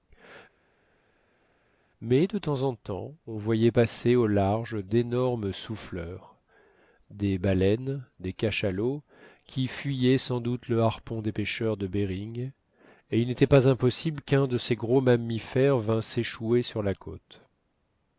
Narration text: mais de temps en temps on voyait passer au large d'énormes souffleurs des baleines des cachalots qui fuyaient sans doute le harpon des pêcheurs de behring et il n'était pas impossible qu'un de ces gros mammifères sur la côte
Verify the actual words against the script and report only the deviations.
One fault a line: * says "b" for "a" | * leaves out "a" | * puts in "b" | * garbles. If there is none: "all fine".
* puts in "vînt s'échouer"